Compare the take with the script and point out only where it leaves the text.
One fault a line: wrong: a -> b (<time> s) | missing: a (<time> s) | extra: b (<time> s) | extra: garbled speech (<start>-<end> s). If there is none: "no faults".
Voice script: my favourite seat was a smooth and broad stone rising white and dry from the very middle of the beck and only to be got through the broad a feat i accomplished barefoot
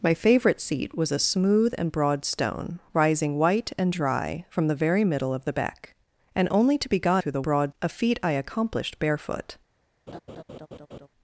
no faults